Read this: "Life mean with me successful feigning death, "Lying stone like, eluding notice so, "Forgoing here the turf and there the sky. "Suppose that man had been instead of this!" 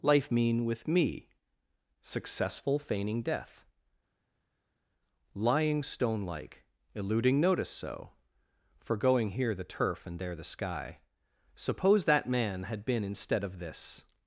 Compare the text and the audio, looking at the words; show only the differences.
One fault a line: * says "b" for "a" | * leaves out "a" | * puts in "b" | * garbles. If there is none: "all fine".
all fine